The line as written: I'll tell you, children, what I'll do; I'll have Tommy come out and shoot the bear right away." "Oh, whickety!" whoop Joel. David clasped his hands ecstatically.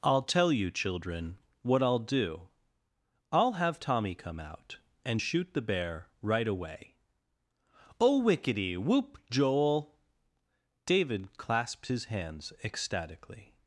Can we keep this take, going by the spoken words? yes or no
yes